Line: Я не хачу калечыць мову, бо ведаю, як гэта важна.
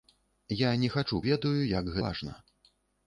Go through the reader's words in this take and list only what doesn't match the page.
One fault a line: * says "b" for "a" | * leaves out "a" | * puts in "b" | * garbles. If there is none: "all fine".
* leaves out "калечыць мову бо"
* leaves out "гэта"